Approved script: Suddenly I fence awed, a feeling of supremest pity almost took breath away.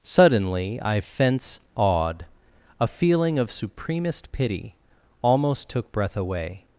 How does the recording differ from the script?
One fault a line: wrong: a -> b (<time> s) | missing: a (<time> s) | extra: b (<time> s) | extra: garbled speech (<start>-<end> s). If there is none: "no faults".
no faults